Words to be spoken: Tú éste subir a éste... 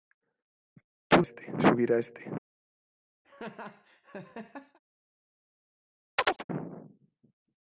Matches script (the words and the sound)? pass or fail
fail